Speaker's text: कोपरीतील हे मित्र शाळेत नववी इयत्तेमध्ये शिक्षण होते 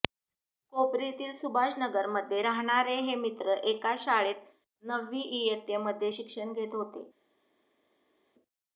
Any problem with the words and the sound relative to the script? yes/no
yes